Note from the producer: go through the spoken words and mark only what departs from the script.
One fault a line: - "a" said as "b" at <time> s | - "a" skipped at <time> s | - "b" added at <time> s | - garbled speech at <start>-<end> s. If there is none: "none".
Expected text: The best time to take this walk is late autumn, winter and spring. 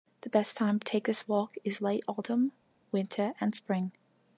none